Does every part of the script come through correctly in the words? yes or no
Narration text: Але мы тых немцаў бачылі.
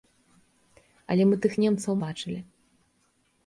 yes